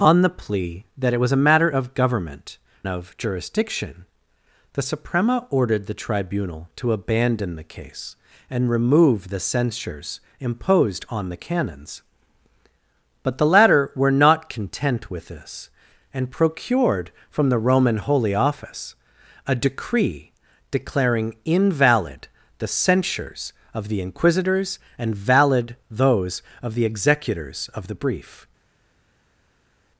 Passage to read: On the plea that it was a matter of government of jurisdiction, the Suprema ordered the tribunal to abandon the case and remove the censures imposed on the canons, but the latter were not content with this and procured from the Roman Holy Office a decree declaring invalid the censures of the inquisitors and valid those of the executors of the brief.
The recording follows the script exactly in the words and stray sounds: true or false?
true